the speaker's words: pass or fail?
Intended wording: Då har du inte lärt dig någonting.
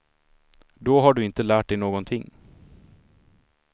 pass